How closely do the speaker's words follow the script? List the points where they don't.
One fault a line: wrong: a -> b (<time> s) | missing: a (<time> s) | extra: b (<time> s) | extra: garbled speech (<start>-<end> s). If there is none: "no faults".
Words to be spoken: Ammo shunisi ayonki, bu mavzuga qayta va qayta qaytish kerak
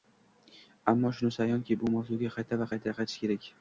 no faults